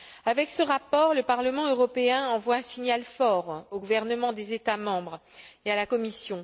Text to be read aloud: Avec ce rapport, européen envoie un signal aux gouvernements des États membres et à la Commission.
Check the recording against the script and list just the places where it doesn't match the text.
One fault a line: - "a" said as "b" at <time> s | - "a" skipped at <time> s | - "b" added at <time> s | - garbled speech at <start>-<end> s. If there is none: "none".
- "le Parlement" added at 1.1 s
- "fort" added at 3.0 s